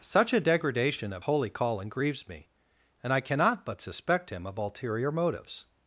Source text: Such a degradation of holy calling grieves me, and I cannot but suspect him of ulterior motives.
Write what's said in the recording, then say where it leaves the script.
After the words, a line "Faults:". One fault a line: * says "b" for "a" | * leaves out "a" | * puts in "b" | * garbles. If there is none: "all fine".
Such a degradation of holy calling grieves me, and I cannot but suspect him of ulterior motives.
Faults:
all fine